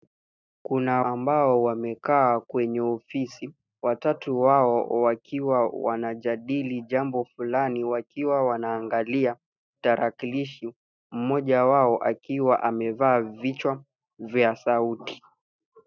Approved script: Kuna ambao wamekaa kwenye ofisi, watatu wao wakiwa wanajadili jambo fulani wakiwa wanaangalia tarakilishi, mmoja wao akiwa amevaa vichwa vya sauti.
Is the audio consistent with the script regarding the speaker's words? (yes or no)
yes